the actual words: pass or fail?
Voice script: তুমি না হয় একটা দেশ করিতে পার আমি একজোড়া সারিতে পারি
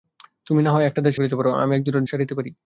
pass